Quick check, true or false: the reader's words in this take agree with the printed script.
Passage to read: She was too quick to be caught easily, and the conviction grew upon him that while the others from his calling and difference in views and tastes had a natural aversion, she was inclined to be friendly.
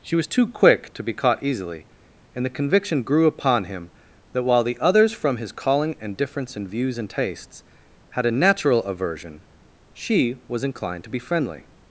true